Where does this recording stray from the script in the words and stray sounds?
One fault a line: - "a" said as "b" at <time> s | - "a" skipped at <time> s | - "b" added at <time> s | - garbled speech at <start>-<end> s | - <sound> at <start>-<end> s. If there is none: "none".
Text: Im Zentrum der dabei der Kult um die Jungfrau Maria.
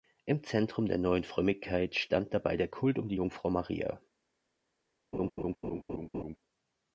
- "neuen Frömmigkeit stand" added at 1.0 s
- laugh at 5.1-6.4 s